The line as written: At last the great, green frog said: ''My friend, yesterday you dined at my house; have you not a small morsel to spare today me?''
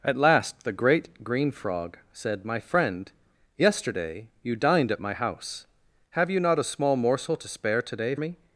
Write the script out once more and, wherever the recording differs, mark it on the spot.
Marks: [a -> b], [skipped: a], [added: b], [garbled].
At last the great, green frog said: ''My friend, yesterday you dined at my house; have you not a small morsel to spare today me?''